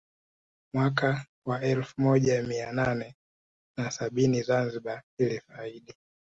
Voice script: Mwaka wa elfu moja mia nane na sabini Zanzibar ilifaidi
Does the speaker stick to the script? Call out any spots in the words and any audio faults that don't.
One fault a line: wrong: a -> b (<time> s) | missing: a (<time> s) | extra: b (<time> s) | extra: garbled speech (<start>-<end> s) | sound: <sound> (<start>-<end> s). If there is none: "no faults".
no faults